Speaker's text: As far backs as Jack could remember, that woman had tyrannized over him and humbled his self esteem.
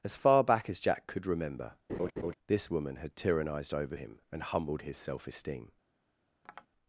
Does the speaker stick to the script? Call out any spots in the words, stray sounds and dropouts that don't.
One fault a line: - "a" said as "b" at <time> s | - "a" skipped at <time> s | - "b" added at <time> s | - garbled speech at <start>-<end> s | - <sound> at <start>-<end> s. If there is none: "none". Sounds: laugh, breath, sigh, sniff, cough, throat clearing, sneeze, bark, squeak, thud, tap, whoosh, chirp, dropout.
- "backs" said as "back" at 0.4 s
- laugh at 1.9-2.3 s
- "that" said as "this" at 2.5 s
- tap at 6.4-6.7 s